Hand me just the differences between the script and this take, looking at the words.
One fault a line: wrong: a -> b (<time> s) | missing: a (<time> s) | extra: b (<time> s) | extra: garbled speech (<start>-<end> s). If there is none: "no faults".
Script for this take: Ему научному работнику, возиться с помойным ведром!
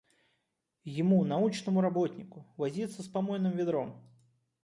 no faults